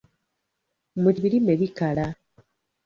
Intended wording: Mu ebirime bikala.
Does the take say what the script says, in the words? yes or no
yes